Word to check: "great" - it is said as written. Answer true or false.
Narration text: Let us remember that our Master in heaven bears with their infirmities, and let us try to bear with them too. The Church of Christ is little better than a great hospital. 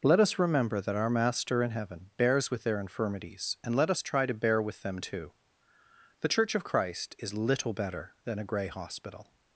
false